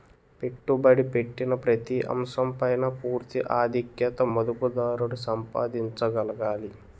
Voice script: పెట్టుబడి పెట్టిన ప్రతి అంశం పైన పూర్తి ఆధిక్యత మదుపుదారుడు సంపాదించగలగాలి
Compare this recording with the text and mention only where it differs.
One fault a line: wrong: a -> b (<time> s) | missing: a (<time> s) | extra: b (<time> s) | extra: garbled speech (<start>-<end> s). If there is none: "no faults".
no faults